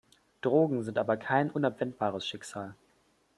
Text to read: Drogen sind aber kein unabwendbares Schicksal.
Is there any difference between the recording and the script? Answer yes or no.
no